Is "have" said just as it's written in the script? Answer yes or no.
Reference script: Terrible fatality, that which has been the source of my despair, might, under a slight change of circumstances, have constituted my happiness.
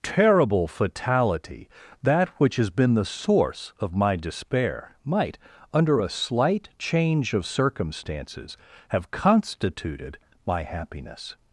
yes